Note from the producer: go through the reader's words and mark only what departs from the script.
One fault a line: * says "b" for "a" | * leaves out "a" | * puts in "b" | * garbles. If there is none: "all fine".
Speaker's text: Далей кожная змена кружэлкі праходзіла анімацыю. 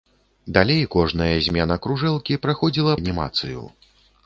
all fine